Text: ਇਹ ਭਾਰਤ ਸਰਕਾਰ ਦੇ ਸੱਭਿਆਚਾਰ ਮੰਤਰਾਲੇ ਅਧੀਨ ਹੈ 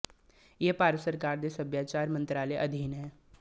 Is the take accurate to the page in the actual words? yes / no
yes